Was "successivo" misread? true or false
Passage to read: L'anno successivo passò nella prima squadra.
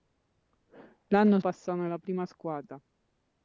true